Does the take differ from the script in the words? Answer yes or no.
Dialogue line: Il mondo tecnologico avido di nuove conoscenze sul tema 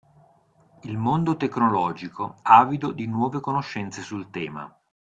no